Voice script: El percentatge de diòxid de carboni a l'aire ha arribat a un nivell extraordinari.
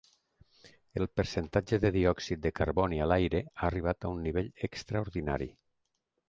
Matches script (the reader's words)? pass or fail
pass